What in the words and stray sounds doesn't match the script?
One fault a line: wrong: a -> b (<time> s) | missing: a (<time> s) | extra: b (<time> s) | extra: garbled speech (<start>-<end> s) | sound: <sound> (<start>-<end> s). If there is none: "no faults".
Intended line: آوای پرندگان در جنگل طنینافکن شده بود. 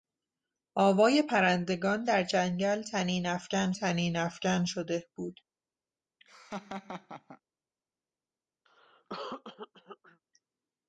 extra: طنینافکن (3.7 s)
sound: laugh (6.2-7.4 s)
sound: cough (8.7-10.2 s)